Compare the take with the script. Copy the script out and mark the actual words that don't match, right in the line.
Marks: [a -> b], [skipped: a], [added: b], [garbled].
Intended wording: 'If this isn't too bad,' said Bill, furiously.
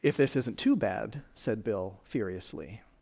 'If this isn't too bad,' said Bill, furiously.